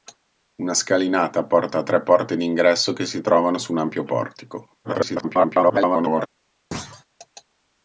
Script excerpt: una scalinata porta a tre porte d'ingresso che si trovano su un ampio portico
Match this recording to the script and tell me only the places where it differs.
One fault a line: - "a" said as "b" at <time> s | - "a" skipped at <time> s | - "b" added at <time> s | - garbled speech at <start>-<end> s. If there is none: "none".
- garbled speech at 4.8-6.3 s